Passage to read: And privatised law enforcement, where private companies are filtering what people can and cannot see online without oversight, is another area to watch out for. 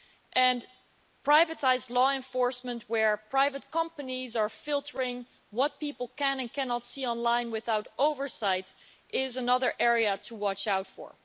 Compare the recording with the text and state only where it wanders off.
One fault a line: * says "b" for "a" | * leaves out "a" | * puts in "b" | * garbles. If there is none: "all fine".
all fine